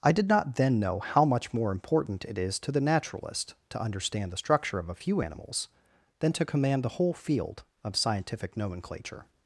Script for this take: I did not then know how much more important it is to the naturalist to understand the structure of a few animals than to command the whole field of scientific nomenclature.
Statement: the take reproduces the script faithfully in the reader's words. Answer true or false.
true